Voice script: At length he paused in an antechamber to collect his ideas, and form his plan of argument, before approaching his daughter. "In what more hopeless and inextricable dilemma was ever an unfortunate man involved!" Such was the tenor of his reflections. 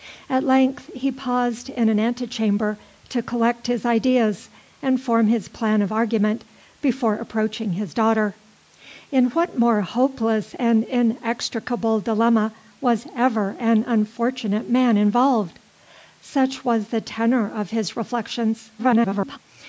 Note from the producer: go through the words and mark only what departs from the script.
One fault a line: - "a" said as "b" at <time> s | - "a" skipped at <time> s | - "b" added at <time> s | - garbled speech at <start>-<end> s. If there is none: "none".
- garbled speech at 18.8-19.4 s